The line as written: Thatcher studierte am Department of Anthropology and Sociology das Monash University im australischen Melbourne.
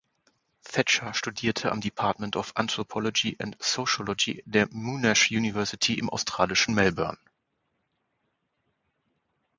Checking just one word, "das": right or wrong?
wrong